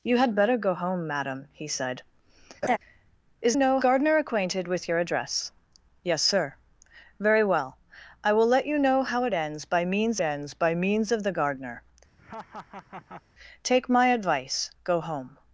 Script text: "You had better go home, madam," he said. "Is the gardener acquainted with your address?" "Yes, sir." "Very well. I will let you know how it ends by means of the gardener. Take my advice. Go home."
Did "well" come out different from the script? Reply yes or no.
no